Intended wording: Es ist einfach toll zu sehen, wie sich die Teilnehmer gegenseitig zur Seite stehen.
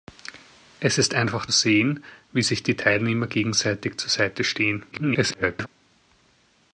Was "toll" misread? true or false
true